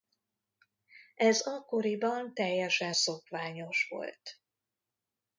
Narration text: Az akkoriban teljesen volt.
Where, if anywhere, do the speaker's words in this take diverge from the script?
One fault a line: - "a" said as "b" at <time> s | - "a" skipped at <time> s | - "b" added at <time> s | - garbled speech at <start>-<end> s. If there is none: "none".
- "Az" said as "Ez" at 1.1 s
- "szokványos" added at 2.9 s